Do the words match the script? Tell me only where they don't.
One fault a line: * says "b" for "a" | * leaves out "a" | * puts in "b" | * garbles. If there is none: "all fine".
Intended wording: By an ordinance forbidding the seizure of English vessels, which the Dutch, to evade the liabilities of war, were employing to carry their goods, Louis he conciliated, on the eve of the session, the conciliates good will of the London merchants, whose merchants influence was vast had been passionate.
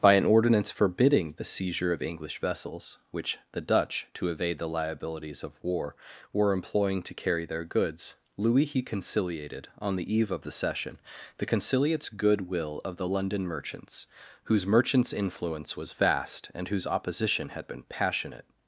* puts in "and whose opposition"